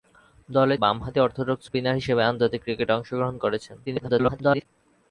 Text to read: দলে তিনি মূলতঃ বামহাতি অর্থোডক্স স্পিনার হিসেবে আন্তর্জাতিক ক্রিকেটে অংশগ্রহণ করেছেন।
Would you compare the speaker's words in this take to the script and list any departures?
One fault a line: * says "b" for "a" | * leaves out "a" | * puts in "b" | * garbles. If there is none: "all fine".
* leaves out "তিনি মূলতঃ"
* garbles